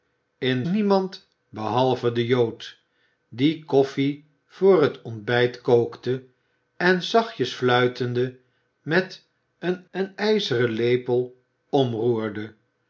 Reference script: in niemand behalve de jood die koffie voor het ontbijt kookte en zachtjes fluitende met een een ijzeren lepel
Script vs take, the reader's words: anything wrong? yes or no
no